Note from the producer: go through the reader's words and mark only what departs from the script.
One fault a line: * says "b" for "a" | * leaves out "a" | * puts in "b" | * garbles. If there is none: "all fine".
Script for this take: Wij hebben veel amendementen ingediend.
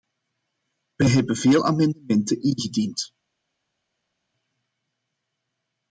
all fine